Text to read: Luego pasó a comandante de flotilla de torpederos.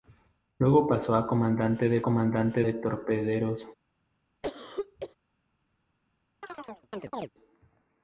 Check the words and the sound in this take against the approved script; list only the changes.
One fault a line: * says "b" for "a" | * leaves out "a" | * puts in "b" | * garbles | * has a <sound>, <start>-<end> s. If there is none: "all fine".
* says "comandante" for "flotilla"
* has a cough, 4.4-5.2 s
* has a chirp, 6.4-7.3 s